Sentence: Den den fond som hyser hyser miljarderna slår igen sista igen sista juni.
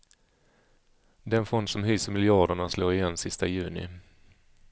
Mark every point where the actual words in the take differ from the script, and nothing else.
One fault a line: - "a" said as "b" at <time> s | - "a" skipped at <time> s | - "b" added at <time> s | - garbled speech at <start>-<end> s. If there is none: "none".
- "den" skipped at 1.4 s
- "hyser" skipped at 2.1 s
- "igen sista" skipped at 3.5 s